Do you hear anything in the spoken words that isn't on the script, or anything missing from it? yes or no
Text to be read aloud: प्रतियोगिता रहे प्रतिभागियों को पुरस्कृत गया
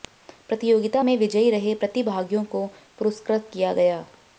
yes